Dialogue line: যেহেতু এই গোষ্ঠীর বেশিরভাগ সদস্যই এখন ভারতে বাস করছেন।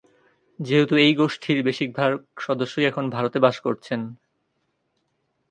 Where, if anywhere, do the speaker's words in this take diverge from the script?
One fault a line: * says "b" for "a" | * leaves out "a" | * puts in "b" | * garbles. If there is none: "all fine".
all fine